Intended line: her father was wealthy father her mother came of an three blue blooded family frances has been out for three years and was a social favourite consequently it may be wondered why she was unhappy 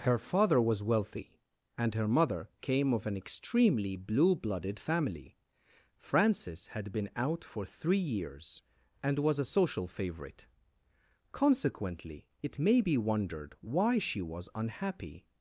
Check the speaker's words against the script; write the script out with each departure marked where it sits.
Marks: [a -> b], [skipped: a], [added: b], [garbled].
her father was wealthy [father -> and] her mother came of an [three -> extremely] blue blooded family frances [has -> had] been out for three years and was a social favourite consequently it may be wondered why she was unhappy